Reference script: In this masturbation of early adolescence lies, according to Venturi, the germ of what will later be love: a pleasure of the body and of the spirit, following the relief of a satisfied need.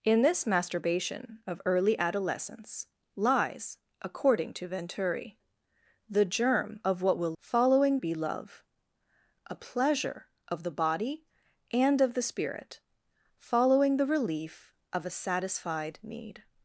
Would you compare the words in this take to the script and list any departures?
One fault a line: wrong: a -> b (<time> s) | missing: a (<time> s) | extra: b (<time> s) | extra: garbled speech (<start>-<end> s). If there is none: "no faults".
wrong: later -> following (7.4 s)